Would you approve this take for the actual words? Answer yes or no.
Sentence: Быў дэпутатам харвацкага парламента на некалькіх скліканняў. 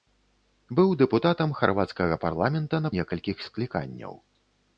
yes